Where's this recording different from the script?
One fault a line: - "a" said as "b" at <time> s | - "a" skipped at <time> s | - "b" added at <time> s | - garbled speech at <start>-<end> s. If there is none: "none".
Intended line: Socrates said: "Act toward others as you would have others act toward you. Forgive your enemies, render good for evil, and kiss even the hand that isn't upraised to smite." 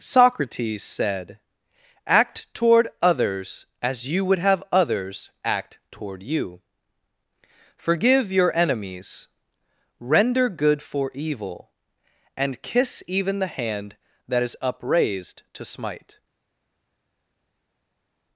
- "isn't" said as "is" at 14.4 s